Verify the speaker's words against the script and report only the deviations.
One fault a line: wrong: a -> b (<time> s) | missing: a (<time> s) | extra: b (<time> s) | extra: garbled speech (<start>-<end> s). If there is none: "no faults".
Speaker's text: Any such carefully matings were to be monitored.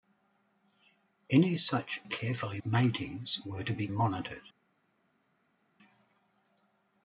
no faults